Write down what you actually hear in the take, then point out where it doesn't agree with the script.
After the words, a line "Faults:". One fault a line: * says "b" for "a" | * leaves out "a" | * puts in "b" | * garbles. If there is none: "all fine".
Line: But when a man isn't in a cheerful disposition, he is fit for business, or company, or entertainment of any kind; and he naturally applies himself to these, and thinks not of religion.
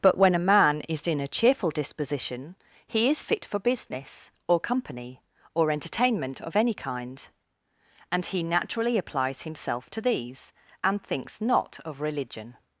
But when a man is in a cheerful disposition, he is fit for business, or company, or entertainment of any kind; and he naturally applies himself to these, and thinks not of religion.
Faults:
* says "is" for "isn't"